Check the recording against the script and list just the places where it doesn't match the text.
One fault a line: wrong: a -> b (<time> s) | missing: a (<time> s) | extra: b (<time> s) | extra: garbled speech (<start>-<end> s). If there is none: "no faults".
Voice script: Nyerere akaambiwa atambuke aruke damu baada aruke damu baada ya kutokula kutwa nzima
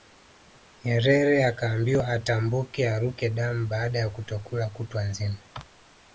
missing: aruke damu baada (4.0 s)